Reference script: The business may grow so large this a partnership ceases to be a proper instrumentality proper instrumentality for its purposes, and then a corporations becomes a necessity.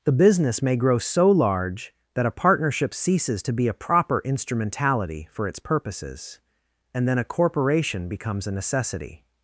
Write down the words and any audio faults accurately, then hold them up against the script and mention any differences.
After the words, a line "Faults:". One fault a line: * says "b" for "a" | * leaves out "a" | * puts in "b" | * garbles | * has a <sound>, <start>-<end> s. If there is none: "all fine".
The business may grow so large that a partnership ceases to be a proper instrumentality for its purposes, and then a corporation becomes a necessity.
Faults:
* says "that" for "this"
* leaves out "proper instrumentality"
* says "corporation" for "corporations"